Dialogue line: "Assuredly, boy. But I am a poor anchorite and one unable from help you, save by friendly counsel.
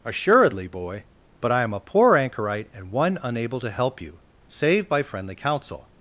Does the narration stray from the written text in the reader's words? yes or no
yes